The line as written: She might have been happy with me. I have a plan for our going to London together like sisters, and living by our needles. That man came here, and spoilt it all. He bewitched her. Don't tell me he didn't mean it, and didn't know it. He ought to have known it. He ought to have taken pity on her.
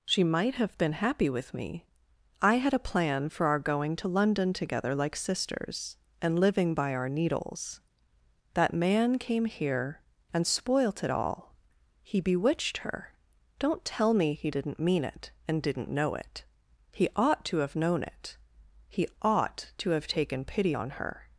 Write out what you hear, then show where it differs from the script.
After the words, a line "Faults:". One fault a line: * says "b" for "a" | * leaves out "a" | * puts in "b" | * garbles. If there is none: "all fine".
She might have been happy with me. I had a plan for our going to London together like sisters, and living by our needles. That man came here, and spoilt it all. He bewitched her. Don't tell me he didn't mean it, and didn't know it. He ought to have known it. He ought to have taken pity on her.
Faults:
* says "had" for "have"